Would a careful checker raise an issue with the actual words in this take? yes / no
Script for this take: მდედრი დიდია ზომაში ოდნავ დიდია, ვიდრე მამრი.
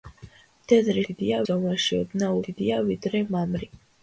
no